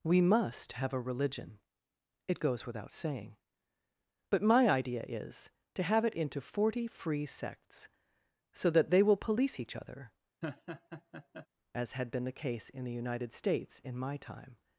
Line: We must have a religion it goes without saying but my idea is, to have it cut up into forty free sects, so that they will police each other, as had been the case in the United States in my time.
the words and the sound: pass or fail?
fail